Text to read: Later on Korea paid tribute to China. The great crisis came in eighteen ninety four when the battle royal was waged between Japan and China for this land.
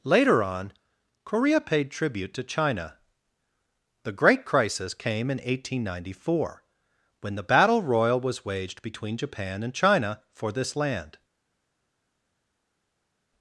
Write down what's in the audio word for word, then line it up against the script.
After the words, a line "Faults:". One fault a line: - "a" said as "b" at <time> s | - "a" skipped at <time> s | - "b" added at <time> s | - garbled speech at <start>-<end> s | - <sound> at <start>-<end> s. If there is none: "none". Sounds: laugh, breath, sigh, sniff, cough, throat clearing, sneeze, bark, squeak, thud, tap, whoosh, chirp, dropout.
Later on Korea paid tribute to China. The great crisis came in eighteen ninety four when the battle royal was waged between Japan and China for this land.
Faults:
none